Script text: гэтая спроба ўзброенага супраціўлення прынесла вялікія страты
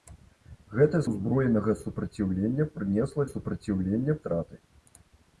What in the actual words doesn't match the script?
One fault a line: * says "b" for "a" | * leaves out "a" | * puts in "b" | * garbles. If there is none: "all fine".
* leaves out "спроба"
* says "супраціўлення" for "вялікія"